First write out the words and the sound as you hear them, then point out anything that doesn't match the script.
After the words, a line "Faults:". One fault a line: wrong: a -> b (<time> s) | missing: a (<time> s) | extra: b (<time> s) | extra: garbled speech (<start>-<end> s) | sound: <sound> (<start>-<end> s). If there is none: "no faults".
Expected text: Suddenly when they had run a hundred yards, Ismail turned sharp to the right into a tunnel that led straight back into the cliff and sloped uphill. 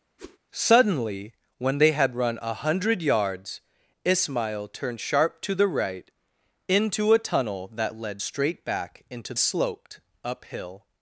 Suddenly when they had run a hundred yards, Ismail turned sharp to the right into a tunnel that led straight back into sloped uphill.
Faults:
sound: whoosh (0.2-0.4 s)
missing: the cliff and (9.3 s)